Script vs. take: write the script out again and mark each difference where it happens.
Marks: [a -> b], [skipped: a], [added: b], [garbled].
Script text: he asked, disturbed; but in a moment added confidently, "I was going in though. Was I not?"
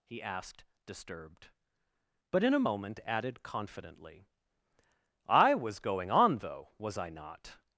he asked, disturbed; but in a moment added confidently, "I was going [in -> on] though. Was I not?"